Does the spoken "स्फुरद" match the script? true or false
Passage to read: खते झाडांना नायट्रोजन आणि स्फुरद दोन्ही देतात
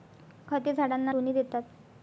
false